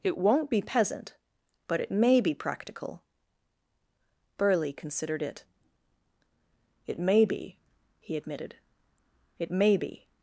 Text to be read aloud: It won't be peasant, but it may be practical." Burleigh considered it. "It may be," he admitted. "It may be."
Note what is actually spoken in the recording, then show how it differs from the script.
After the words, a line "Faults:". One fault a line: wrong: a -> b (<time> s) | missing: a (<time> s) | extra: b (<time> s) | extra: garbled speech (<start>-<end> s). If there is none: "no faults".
It won't be peasant, but it may be practical." Burleigh considered it. "It may be," he admitted. "It may be."
Faults:
no faults